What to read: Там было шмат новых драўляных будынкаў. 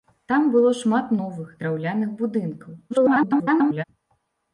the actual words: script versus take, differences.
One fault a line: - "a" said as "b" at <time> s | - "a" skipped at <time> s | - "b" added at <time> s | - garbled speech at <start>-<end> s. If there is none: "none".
- garbled speech at 2.9-3.8 s